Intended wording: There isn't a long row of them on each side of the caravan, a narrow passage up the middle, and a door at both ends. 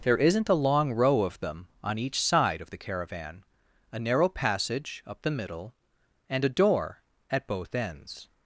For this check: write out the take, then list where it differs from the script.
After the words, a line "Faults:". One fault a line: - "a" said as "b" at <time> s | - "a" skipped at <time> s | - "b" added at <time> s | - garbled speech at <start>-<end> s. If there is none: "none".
There isn't a long row of them on each side of the caravan, a narrow passage up the middle, and a door at both ends.
Faults:
none